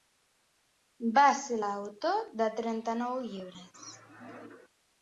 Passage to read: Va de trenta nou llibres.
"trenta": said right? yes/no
yes